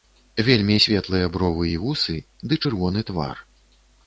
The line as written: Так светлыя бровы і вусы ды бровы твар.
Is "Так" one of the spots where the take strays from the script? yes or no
yes